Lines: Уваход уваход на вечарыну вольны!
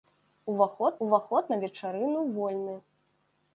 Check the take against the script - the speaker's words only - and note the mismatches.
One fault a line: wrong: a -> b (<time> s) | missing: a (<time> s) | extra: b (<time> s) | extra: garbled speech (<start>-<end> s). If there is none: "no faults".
no faults